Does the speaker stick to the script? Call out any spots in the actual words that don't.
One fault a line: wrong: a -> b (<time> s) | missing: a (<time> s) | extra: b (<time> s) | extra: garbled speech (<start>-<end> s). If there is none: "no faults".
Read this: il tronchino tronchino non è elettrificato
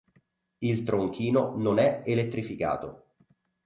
missing: tronchino (1.6 s)